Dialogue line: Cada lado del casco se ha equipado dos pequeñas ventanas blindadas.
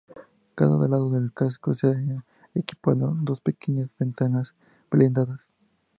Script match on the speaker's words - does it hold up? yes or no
yes